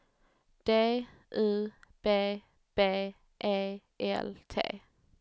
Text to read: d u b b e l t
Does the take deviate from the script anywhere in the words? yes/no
no